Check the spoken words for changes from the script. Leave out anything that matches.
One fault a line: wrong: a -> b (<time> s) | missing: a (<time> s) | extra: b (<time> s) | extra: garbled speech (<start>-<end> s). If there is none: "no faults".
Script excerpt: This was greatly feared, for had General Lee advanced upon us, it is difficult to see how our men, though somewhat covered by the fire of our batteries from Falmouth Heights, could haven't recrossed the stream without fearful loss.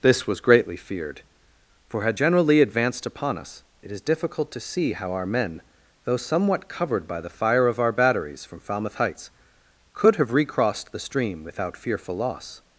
wrong: haven't -> have (10.2 s)